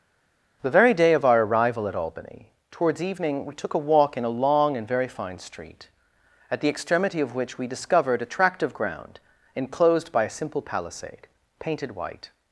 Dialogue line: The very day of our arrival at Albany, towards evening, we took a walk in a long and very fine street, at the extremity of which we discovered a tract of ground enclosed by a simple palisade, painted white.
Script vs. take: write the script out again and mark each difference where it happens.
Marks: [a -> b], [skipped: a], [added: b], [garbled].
The very day of our arrival at Albany, towards evening, we took a walk in a long and very fine street, at the extremity of which we discovered a tract of ground enclosed by a simple palisade, painted white.